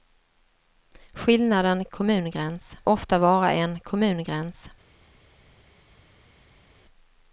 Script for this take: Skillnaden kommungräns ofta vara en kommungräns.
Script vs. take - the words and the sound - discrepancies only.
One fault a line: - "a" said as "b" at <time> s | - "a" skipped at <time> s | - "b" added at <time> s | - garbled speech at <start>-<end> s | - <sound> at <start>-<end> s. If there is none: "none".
none